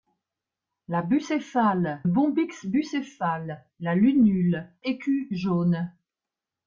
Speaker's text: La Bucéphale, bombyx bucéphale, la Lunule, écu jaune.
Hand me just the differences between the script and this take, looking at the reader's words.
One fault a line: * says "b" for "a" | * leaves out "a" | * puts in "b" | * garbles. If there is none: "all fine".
all fine